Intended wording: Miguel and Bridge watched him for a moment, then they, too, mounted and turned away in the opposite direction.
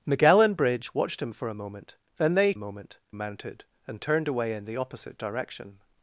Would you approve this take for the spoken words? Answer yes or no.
no